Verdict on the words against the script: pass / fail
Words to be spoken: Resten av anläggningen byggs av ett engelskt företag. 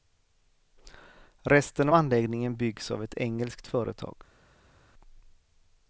fail